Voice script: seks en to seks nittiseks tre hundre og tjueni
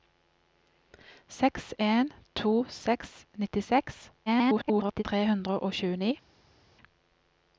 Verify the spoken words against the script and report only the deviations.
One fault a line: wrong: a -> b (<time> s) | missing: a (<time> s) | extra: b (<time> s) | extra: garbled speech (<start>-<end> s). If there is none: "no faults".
extra: garbled speech (4.3-5.0 s)